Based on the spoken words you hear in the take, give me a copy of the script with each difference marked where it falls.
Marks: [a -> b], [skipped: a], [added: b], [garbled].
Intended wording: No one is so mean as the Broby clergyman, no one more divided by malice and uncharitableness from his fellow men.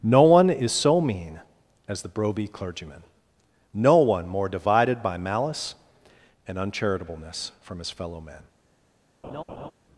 No one is so mean as the Broby clergyman, no one more divided by malice and uncharitableness from his fellow men.